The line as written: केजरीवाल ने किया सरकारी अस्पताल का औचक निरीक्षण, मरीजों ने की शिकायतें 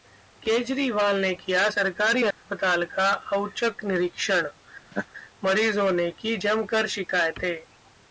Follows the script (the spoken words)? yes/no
no